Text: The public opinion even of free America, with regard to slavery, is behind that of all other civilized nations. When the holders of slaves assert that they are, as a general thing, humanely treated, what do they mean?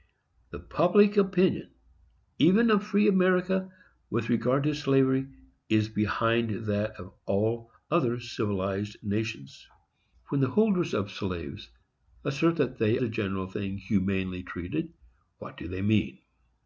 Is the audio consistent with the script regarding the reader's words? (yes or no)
no